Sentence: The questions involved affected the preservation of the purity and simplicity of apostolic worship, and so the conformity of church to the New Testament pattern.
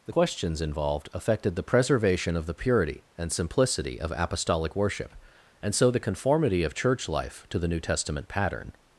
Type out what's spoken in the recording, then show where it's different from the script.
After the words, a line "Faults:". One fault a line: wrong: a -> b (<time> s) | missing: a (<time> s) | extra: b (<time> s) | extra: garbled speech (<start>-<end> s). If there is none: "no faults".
The questions involved affected the preservation of the purity and simplicity of apostolic worship, and so the conformity of church life to the New Testament pattern.
Faults:
extra: life (7.1 s)